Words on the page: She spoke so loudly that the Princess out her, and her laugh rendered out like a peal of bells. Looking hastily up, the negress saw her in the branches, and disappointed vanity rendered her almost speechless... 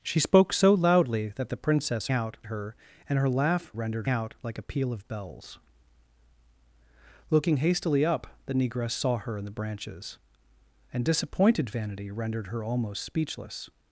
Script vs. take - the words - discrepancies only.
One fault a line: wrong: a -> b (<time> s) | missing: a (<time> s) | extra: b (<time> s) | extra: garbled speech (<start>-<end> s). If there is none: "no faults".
no faults